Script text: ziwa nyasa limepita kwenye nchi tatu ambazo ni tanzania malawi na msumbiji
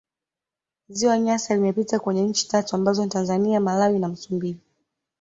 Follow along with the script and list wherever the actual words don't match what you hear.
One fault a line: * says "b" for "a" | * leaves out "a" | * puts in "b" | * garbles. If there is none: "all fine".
all fine